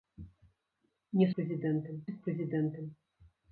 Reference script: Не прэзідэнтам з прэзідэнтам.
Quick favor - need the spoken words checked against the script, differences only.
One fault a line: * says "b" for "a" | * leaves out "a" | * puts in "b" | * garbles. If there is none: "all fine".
all fine